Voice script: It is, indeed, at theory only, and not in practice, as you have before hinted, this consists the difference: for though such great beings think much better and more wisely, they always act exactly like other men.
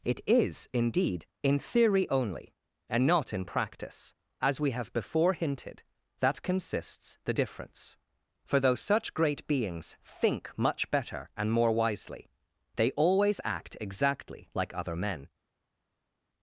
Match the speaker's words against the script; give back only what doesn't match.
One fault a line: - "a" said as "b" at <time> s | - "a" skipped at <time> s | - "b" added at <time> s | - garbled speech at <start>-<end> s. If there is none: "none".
- "at" said as "in" at 1.4 s
- "you" said as "we" at 4.6 s
- "this" said as "that" at 6.2 s